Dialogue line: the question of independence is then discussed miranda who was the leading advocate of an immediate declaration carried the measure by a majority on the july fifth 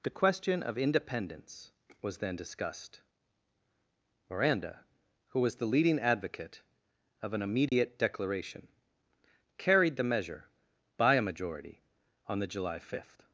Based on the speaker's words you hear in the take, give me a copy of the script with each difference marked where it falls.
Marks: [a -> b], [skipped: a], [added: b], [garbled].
the question of independence [is -> was] then discussed miranda who was the leading advocate of an immediate declaration carried the measure by a majority on the july fifth